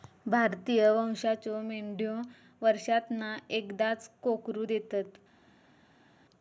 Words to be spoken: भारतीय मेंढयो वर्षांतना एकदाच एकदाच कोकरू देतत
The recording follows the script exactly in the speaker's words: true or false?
false